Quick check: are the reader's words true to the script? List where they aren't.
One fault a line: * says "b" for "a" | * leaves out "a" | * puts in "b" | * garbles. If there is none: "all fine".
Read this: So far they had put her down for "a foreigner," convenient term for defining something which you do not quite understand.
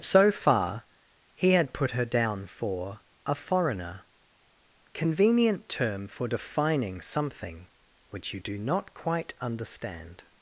* says "he" for "they"